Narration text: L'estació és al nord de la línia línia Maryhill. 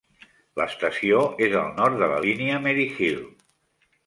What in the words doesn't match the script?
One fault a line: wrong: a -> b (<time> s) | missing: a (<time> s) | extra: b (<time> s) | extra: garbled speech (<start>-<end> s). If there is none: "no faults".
missing: línia (2.6 s)